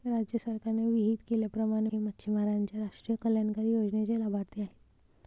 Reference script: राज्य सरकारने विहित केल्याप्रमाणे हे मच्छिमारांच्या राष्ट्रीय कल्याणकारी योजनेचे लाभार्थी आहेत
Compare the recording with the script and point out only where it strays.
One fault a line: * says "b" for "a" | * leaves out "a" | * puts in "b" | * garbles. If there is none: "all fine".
all fine